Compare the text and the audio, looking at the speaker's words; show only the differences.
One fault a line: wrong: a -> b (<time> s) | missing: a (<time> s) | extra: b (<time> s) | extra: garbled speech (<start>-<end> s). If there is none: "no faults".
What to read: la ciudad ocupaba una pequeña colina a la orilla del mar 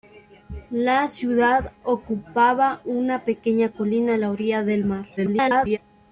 extra: garbled speech (5.2-5.8 s)